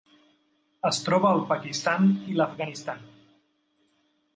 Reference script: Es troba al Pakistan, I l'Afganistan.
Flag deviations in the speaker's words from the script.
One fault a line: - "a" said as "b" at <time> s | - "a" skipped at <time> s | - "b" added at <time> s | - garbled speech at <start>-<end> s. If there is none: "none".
none